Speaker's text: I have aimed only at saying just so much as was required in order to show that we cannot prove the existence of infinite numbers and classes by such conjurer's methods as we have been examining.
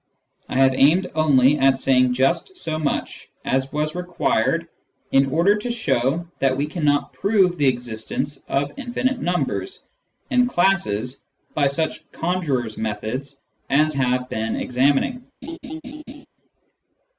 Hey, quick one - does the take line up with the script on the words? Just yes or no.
no